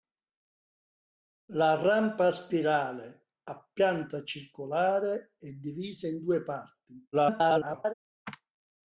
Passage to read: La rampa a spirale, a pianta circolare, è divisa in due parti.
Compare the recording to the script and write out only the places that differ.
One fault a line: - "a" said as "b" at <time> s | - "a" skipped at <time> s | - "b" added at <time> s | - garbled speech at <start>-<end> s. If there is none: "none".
- garbled speech at 7.1-7.9 s